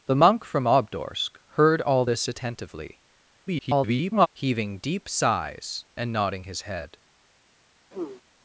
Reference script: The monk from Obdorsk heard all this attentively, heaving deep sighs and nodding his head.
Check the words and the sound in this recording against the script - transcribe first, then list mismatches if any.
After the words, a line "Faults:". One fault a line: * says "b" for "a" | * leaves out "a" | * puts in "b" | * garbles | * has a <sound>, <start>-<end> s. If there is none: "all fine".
The monk from Obdorsk heard all this attentively, [garbled] heaving deep sighs and nodding his head.
Faults:
* garbles
* has a throat clearing, 7.9-8.2 s